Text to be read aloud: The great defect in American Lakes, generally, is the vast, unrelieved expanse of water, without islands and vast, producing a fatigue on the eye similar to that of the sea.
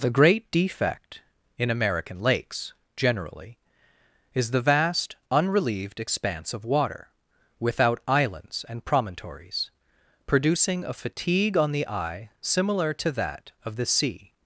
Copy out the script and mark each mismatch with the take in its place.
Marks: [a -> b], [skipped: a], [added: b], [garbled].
The great defect in American Lakes, generally, is the vast, unrelieved expanse of water, without islands and [vast, -> promontories] producing a fatigue on the eye similar to that of the sea.